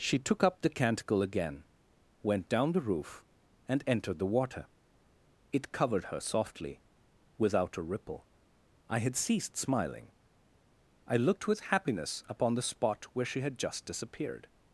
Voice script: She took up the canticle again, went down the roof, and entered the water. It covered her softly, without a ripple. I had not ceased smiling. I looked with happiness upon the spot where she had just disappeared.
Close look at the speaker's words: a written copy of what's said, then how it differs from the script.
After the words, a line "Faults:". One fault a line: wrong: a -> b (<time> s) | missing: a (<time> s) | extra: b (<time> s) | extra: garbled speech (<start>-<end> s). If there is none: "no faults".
She took up the canticle again, went down the roof, and entered the water. It covered her softly, without a ripple. I had ceased smiling. I looked with happiness upon the spot where she had just disappeared.
Faults:
missing: not (9.1 s)